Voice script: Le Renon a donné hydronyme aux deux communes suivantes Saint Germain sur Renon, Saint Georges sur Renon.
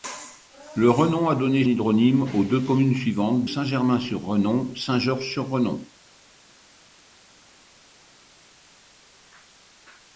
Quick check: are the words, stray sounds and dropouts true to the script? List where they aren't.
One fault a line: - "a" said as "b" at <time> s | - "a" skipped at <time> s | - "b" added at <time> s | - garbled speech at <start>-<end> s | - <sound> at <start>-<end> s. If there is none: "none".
none